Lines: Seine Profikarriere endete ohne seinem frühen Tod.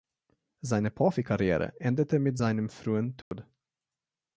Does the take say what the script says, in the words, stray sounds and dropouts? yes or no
no